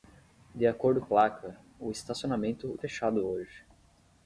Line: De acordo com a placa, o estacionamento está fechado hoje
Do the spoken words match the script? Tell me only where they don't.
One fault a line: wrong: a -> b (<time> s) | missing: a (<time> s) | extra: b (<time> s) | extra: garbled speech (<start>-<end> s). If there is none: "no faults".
missing: com (1.0 s)
missing: está (2.8 s)